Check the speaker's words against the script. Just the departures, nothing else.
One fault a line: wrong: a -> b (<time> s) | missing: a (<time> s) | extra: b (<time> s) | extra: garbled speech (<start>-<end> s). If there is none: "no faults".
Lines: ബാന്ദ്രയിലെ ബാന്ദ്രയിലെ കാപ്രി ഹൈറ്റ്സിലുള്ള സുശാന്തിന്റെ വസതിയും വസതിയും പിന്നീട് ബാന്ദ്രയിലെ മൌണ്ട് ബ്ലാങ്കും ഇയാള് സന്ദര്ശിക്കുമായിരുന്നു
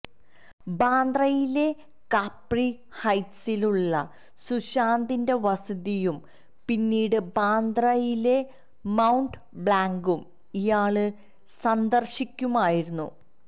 missing: ബാന്ദ്രയിലെ (1.6 s)
missing: വസതിയും (6.2 s)